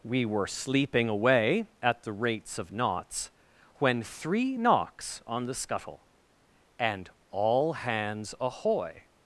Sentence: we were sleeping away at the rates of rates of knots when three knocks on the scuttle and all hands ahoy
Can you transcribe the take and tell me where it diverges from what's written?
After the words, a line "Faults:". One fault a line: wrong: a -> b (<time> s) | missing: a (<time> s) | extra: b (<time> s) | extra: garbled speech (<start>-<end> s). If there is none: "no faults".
we were sleeping away at the rates of knots when three knocks on the scuttle and all hands ahoy
Faults:
missing: rates of (2.7 s)